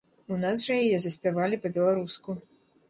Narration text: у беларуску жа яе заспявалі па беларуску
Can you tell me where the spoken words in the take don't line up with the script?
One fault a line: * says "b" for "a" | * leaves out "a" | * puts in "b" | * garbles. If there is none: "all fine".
* says "нас" for "беларуску"